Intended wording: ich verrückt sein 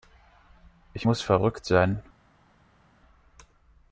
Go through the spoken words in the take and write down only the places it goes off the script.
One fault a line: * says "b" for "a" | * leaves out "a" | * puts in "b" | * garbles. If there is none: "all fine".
* puts in "muss"